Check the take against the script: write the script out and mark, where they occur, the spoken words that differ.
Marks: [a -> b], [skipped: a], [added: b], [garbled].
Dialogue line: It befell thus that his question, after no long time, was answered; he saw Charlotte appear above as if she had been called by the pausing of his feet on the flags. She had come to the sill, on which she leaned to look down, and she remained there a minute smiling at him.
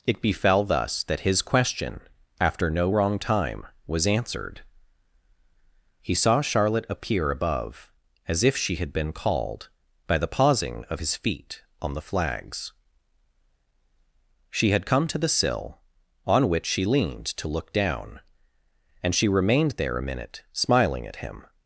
It befell thus that his question, after no [long -> wrong] time, was answered; he saw Charlotte appear above as if she had been called by the pausing of his feet on the flags. She had come to the sill, on which she leaned to look down, and she remained there a minute smiling at him.